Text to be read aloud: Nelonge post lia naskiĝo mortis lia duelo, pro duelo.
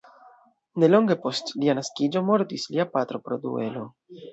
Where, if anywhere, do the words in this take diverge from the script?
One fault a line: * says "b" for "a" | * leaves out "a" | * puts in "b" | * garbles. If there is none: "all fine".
* says "patro" for "duelo"